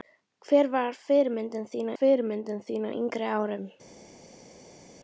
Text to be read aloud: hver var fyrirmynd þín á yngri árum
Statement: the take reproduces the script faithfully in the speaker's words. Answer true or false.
false